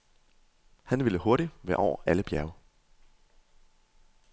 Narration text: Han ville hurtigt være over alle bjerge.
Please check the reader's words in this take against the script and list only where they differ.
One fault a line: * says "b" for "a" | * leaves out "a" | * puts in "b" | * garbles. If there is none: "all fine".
all fine